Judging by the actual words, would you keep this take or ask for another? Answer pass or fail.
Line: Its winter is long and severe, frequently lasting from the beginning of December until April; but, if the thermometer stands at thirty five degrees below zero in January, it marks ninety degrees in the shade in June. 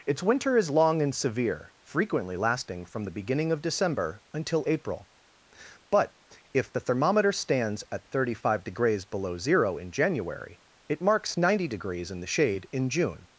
pass